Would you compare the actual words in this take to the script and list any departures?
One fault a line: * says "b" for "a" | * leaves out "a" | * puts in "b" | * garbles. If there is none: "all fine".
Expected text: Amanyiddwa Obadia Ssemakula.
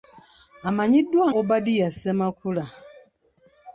all fine